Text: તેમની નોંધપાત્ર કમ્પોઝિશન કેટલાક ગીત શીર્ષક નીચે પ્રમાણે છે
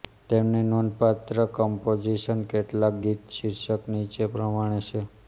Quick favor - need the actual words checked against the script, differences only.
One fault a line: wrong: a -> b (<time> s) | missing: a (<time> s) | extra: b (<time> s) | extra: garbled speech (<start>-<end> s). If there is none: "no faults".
no faults